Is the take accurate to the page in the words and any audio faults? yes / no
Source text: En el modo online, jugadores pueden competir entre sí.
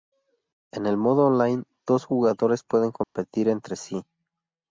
no